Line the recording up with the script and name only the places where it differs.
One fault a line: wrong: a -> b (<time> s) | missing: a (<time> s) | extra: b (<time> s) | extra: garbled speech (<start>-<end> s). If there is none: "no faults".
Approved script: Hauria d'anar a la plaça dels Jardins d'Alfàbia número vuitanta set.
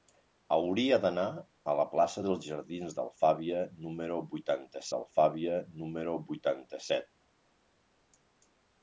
extra: d'Alfàbia número vuitanta (4.9 s)